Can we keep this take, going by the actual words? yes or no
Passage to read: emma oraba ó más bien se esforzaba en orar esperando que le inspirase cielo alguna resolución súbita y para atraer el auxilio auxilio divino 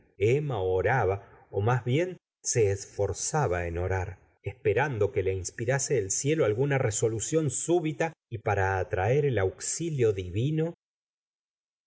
no